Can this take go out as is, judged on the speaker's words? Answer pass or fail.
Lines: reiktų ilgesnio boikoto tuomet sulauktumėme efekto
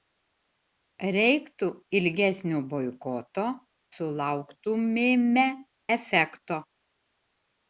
fail